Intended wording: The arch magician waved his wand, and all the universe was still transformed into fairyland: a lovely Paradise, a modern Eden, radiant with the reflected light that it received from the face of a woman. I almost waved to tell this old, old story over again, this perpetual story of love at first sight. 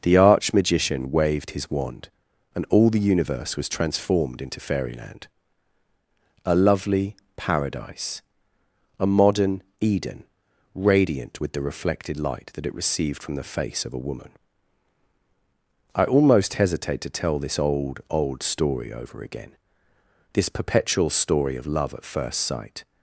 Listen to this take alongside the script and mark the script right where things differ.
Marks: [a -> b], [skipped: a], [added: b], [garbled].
The arch magician waved his wand, and all the universe was [skipped: still] transformed into fairyland: a lovely Paradise, a modern Eden, radiant with the reflected light that it received from the face of a woman. I almost [waved -> hesitate] to tell this old, old story over again, this perpetual story of love at first sight.